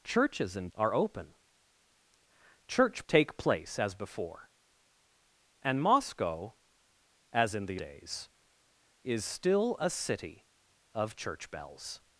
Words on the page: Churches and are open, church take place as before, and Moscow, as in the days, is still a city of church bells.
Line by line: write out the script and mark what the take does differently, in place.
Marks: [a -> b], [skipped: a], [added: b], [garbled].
Churches and are open, church take place as before, and Moscow, as in the days, is still a city of church bells.